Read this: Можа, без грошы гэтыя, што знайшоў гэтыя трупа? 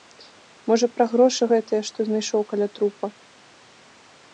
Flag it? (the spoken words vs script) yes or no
yes